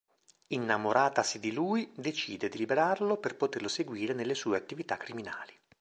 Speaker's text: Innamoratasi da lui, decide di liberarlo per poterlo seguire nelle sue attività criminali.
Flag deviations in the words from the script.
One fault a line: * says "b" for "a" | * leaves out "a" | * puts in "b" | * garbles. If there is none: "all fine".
* says "di" for "da"